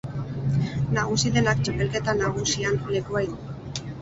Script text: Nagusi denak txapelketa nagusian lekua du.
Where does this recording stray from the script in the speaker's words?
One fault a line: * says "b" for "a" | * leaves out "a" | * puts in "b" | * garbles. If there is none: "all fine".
all fine